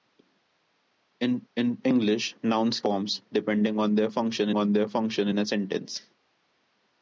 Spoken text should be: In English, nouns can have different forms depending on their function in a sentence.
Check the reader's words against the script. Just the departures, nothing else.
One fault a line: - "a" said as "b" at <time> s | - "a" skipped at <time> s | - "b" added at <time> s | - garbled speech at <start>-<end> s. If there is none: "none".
- "in" added at 1.5 s
- "can have different forms depending" said as "forms depending on their function" at 2.8 s